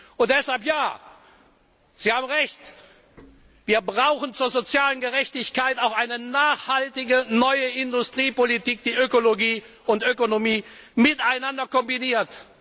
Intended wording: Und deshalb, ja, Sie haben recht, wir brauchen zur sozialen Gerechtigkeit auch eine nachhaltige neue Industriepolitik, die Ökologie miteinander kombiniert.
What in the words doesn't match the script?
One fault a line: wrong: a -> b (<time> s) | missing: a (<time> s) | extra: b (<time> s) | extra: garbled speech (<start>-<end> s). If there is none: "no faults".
extra: und Ökonomie (9.9 s)